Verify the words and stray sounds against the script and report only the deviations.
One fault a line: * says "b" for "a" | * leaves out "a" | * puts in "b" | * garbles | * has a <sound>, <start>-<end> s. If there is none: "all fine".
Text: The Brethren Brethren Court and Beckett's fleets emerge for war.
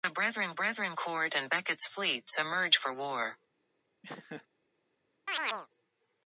* has a laugh, 4.0-4.5 s
* has a chirp, 5.3-5.7 s